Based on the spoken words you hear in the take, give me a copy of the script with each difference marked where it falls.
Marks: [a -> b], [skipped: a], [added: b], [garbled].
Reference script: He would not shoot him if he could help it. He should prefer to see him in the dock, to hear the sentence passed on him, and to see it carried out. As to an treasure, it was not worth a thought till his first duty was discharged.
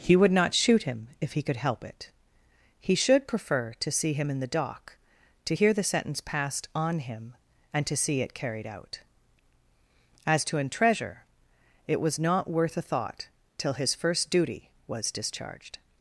He would not shoot him if he could help it. He should prefer to see him in the dock, to hear the sentence passed on him, and to see it carried out. As to an treasure, it was not worth a thought till his first duty was discharged.